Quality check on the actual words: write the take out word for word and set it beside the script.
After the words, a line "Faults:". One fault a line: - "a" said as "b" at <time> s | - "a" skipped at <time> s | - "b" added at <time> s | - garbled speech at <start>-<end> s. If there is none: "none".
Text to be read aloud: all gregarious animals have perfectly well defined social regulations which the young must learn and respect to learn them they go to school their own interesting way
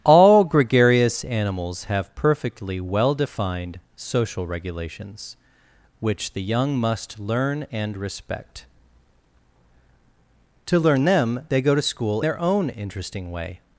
all gregarious animals have perfectly well defined social regulations which the young must learn and respect to learn them they go to school their own interesting way
Faults:
none